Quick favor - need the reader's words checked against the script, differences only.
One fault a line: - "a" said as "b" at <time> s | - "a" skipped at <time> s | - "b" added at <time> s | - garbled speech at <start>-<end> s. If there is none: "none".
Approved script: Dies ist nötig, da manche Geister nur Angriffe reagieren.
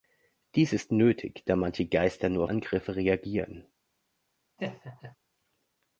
none